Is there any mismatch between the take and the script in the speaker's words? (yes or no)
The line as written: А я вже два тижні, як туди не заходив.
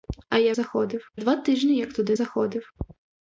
yes